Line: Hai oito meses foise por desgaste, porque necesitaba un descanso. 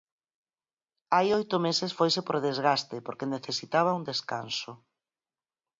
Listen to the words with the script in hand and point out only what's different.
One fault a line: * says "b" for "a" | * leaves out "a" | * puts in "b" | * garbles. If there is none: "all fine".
all fine